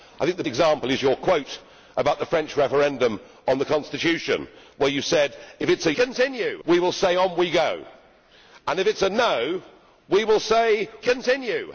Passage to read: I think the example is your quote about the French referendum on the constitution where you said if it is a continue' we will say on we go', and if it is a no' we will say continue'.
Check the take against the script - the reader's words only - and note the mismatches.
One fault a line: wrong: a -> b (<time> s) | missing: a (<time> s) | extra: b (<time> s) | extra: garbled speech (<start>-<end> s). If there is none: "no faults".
no faults